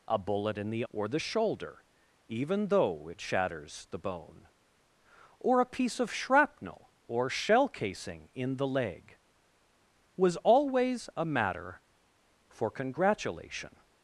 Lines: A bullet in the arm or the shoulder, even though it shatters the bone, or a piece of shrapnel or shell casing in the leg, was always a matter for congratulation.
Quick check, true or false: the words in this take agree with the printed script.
false